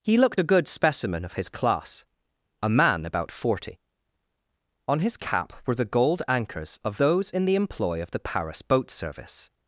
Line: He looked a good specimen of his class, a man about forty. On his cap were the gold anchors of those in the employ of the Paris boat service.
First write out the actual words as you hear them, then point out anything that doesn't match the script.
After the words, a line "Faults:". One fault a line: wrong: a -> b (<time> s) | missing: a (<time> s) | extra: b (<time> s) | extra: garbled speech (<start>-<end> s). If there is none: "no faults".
He looked a good specimen of his class, a man about forty. On his cap were the gold anchors of those in the employ of the Paris boat service.
Faults:
no faults